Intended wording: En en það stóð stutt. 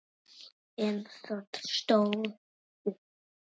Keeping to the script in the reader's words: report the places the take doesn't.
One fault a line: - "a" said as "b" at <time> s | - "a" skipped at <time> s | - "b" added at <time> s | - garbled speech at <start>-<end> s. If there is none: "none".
- "en" skipped at 1.0 s